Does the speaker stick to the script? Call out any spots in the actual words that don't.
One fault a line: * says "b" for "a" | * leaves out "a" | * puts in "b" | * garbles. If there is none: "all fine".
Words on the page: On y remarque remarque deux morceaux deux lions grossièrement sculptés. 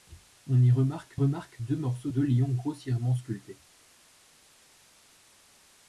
all fine